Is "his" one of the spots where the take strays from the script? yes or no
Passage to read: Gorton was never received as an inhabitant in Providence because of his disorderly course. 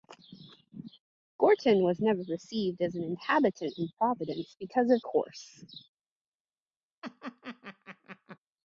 yes